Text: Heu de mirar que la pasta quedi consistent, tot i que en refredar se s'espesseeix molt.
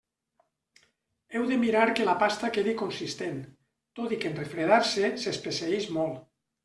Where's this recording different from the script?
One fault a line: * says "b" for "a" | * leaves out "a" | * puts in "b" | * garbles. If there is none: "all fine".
all fine